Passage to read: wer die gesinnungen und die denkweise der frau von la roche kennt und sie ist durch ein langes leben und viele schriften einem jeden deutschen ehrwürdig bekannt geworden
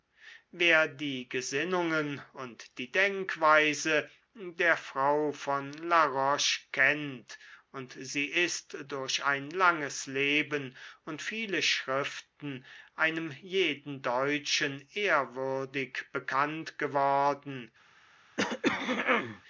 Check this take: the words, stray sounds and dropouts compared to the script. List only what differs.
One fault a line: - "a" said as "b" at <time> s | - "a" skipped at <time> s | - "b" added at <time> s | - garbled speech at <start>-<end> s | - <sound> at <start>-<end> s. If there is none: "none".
- throat clearing at 18.4-19.4 s